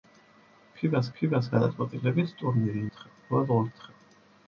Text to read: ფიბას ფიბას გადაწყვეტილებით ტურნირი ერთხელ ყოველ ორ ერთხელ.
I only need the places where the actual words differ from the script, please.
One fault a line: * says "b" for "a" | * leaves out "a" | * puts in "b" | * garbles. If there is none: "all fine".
all fine